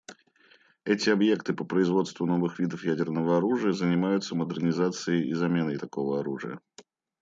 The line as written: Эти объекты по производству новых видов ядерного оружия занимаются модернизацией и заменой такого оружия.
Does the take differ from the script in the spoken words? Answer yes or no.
no